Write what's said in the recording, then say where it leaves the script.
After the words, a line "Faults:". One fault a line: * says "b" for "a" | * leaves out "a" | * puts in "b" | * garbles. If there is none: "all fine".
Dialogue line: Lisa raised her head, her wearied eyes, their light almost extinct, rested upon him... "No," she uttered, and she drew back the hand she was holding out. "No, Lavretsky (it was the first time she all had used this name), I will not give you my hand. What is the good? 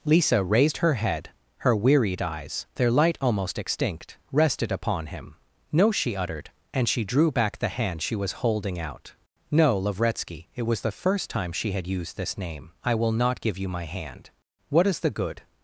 Lisa raised her head, her wearied eyes, their light almost extinct, rested upon him... "No," she uttered, and she drew back the hand she was holding out. "No, Lavretsky (it was the first time she had used this name), I will not give you my hand. What is the good?
Faults:
* leaves out "all"